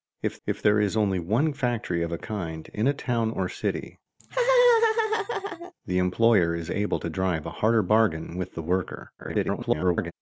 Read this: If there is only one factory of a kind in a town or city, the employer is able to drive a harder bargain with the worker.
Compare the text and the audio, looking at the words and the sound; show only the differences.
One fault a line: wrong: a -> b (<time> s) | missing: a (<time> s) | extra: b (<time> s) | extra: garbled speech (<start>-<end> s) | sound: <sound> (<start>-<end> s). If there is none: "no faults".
extra: if (0.5 s)
sound: laugh (4.2-5.7 s)
extra: garbled speech (9.2-10.1 s)